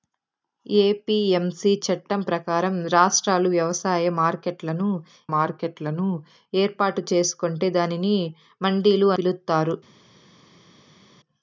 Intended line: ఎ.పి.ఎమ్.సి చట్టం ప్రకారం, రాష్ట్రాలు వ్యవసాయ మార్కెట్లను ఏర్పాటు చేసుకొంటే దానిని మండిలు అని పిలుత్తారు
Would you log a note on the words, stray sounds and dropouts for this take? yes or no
yes